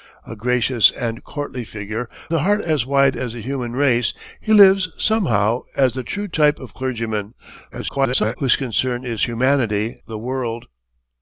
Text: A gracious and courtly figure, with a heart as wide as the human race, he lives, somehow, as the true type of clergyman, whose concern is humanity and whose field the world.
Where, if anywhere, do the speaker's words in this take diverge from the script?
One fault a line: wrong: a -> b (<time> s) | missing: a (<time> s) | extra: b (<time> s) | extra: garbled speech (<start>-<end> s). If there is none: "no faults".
missing: with (2.1 s)
extra: garbled speech (7.7-8.4 s)
missing: and whose field (10.0 s)